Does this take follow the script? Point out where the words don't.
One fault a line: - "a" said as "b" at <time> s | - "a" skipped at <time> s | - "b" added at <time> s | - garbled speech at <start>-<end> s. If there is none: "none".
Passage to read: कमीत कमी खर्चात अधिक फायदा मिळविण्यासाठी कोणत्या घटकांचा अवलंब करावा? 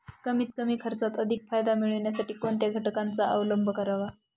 none